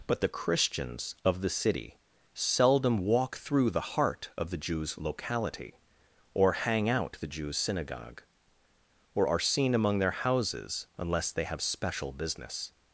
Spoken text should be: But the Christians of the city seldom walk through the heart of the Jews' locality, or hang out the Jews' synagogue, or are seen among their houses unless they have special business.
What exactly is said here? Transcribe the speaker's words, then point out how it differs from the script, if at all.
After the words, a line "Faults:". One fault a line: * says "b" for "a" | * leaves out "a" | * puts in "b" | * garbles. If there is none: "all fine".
But the Christians of the city seldom walk through the heart of the Jews' locality, or hang out the Jews' synagogue, or are seen among their houses unless they have special business.
Faults:
all fine